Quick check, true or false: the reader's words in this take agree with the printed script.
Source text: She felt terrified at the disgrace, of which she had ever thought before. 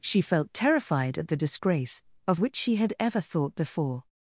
true